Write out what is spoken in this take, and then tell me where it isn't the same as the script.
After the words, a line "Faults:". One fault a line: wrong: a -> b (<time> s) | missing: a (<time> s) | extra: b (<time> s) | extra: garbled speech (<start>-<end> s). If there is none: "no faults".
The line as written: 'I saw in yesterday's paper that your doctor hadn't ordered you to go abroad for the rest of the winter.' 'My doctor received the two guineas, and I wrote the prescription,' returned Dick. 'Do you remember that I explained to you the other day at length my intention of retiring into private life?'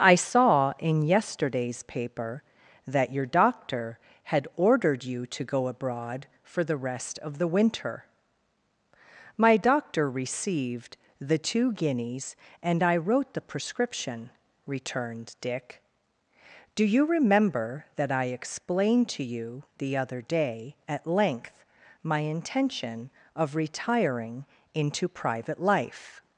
'I saw in yesterday's paper that your doctor had ordered you to go abroad for the rest of the winter.' 'My doctor received the two guineas, and I wrote the prescription,' returned Dick. 'Do you remember that I explained to you the other day at length my intention of retiring into private life?'
Faults:
wrong: hadn't -> had (4.2 s)